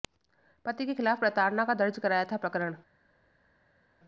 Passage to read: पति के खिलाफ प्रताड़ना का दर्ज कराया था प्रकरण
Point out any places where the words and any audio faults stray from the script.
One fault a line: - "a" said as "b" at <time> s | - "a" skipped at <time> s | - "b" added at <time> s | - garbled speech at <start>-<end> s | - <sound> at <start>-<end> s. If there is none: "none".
none